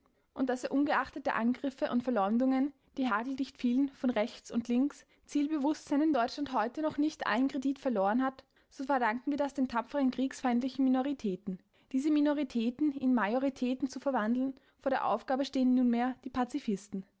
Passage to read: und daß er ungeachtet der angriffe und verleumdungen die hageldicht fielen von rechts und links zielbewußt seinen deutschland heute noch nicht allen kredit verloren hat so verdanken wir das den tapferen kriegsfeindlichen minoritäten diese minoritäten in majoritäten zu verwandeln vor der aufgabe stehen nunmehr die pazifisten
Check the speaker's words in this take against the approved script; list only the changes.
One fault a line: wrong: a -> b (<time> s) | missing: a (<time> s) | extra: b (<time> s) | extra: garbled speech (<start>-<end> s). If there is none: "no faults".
no faults